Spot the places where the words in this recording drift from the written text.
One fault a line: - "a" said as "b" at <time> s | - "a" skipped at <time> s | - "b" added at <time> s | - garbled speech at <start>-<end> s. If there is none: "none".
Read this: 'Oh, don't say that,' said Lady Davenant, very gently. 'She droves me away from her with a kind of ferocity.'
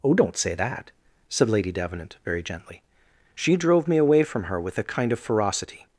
- "droves" said as "drove" at 3.6 s